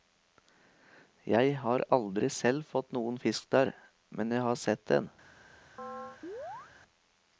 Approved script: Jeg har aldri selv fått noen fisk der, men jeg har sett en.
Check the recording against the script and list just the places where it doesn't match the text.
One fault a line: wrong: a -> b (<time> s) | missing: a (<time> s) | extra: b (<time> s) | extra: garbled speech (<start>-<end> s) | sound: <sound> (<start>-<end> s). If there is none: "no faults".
sound: chirp (5.8-6.7 s)